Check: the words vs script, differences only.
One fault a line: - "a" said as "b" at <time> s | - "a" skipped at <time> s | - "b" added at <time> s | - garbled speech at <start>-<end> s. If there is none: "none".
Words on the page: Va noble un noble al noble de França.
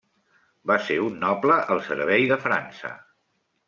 - "noble" said as "ser" at 0.8 s
- "noble" said as "servei" at 1.9 s